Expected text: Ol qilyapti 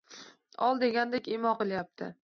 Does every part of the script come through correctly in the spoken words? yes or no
no